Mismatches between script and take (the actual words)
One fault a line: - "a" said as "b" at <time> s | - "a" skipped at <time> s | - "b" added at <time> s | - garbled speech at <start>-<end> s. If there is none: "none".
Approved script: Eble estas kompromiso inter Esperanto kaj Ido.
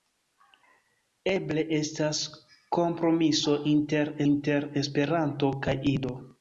- "inter" added at 4.3 s